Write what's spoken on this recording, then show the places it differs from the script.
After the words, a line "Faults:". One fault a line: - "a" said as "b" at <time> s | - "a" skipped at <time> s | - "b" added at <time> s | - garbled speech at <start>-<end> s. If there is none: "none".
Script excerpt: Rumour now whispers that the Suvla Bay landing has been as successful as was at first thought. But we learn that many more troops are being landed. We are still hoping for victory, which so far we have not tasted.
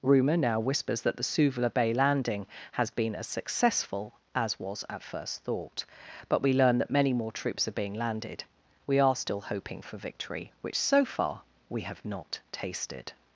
Rumour now whispers that the Suvla Bay landing has been as successful as was at first thought. But we learn that many more troops are being landed. We are still hoping for victory, which so far we have not tasted.
Faults:
none